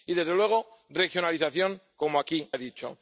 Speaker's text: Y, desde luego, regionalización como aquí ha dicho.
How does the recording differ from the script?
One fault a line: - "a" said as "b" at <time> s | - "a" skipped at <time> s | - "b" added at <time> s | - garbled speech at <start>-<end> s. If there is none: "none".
none